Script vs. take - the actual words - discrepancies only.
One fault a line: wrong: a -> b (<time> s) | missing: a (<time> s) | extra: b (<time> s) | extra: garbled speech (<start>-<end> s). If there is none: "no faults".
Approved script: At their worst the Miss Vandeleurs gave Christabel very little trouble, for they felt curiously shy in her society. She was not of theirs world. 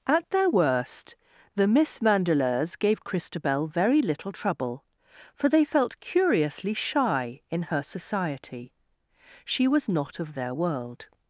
wrong: theirs -> their (10.3 s)